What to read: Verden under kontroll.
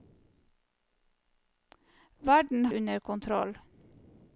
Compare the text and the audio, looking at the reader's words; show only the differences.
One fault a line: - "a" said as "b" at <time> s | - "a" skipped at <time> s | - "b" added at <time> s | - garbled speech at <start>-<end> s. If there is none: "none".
none